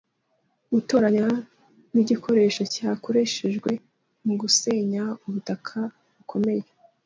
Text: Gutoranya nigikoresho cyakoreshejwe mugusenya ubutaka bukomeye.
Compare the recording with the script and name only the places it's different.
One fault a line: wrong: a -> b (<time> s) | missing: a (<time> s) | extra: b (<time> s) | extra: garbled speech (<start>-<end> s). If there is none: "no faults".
no faults